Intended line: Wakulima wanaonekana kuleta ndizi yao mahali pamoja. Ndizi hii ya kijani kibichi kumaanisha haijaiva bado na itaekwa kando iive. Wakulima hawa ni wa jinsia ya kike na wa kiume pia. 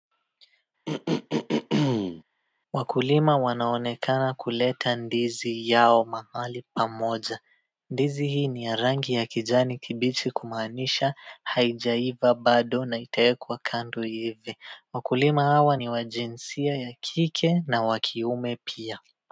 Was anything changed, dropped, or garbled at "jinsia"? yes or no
no